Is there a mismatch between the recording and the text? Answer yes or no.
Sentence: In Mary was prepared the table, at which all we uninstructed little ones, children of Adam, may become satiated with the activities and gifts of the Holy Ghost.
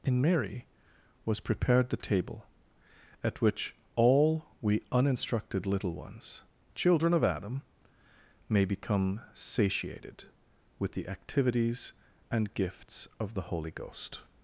no